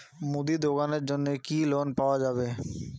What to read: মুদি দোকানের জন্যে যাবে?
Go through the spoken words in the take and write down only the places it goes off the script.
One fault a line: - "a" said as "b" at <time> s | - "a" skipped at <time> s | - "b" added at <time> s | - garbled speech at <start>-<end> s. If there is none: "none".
- "কি লোন পাওয়া" added at 1.4 s